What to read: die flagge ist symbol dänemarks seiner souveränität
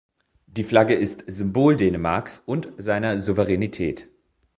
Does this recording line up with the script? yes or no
no